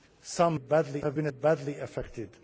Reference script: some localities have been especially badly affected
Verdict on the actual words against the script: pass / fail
fail